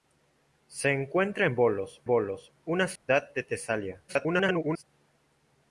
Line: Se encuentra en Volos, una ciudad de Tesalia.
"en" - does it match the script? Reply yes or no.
yes